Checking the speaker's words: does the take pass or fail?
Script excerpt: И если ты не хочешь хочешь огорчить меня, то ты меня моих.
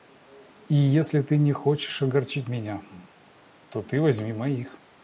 fail